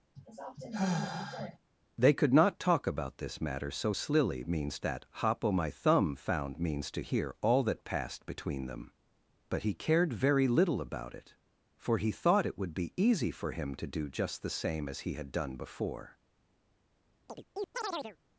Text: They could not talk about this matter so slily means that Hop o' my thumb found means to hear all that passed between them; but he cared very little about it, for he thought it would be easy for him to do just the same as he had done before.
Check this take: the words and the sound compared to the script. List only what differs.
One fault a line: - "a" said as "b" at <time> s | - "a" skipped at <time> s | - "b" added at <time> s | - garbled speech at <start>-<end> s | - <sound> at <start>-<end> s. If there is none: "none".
- sigh at 0.2-1.6 s
- chirp at 17.3-18.2 s